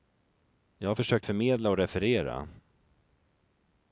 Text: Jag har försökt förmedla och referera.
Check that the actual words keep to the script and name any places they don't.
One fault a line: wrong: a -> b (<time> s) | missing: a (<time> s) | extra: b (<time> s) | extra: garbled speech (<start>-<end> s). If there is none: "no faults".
no faults